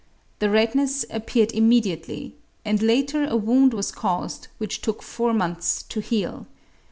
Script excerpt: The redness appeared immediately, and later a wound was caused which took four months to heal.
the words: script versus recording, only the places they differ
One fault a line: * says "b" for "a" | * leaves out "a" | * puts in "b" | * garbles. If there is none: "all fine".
all fine